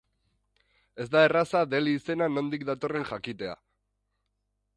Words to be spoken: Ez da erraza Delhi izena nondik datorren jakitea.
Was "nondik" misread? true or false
false